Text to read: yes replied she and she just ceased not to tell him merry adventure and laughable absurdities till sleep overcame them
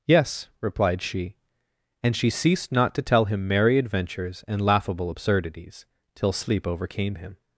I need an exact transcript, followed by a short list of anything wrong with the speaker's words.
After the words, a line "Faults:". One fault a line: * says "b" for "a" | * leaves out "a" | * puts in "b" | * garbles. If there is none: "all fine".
yes replied she and she ceased not to tell him merry adventures and laughable absurdities till sleep overcame him
Faults:
* leaves out "just"
* says "adventures" for "adventure"
* says "him" for "them"